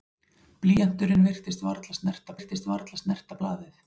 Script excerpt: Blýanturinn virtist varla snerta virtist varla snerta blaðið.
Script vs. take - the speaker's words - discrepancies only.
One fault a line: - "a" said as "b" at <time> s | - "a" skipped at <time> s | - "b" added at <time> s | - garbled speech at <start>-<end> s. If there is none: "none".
none